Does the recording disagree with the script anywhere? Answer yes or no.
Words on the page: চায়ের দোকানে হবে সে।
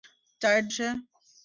yes